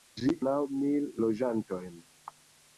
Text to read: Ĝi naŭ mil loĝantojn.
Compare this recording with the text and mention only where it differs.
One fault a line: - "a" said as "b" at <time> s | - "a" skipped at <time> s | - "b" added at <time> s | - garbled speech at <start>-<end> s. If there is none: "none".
none